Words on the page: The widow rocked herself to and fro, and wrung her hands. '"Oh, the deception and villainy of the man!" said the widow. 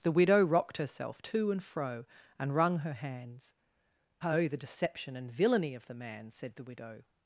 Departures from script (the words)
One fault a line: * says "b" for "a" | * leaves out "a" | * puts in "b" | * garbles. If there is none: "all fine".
all fine